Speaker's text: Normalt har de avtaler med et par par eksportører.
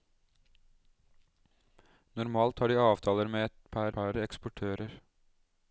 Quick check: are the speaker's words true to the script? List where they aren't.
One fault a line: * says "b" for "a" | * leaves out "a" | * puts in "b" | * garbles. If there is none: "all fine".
all fine